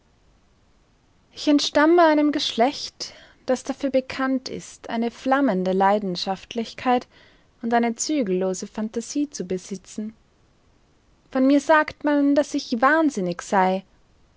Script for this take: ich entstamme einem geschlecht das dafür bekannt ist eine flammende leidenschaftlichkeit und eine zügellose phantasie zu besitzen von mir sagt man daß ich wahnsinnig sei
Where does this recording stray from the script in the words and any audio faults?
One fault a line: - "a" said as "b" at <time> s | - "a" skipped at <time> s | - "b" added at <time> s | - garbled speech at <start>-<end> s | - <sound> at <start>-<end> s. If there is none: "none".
none